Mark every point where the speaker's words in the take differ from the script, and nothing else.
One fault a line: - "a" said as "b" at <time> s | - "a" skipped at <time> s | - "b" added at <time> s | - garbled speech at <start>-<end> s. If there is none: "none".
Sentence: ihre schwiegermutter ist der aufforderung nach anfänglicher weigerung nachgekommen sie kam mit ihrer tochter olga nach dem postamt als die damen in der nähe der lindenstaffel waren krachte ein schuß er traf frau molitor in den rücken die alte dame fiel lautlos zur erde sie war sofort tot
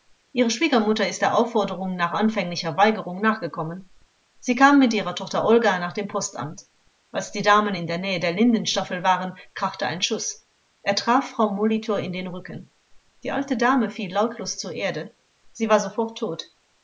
none